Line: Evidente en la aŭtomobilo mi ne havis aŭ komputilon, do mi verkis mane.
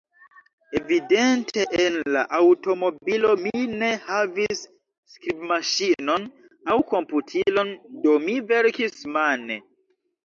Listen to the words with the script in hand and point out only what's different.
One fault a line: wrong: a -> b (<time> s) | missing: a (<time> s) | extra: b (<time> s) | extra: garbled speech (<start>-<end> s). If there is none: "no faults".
extra: skribmaŝinon (5.1 s)